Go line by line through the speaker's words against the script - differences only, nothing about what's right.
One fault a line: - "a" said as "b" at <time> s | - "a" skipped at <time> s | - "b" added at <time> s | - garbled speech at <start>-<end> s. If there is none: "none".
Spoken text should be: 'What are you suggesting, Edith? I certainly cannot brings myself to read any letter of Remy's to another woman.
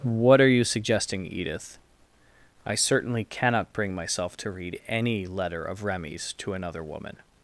- "brings" said as "bring" at 3.7 s